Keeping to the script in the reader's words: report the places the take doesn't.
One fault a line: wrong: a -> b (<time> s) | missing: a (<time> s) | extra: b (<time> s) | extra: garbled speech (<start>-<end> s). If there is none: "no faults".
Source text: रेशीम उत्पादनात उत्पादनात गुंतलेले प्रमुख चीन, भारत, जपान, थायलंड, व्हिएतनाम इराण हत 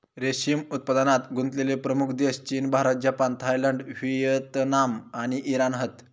missing: उत्पादनात (1.3 s)
extra: देश (2.2 s)
extra: आणि (5.2 s)